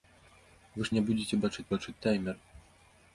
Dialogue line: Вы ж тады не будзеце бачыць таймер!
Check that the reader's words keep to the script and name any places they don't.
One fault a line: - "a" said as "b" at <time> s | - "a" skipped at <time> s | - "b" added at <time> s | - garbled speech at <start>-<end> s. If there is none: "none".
- "тады" skipped at 0.9 s
- "бачыць" added at 1.7 s